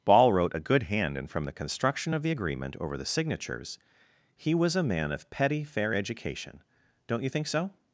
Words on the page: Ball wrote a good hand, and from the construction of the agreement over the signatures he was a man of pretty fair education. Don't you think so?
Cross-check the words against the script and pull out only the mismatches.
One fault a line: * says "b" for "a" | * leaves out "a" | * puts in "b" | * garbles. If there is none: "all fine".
* says "petty" for "pretty"